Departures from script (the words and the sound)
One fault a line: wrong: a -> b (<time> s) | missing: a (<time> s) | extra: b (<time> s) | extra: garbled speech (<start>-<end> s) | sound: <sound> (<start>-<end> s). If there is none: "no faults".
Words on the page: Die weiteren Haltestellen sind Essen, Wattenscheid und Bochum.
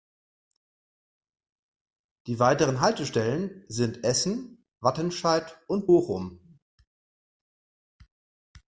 no faults